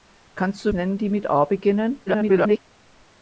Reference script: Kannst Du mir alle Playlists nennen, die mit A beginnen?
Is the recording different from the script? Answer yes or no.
yes